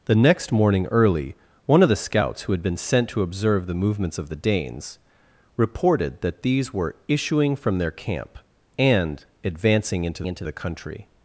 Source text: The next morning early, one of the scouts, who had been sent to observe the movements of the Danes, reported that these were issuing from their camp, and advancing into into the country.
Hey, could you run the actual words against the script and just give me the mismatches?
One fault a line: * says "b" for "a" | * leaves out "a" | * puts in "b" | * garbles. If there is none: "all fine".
all fine